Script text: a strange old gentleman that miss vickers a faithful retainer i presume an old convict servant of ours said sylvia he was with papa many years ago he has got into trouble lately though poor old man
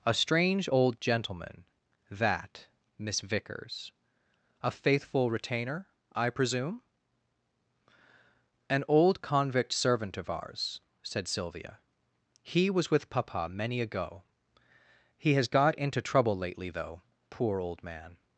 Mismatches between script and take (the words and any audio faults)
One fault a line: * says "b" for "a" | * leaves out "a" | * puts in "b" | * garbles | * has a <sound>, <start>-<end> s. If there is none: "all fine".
* leaves out "years"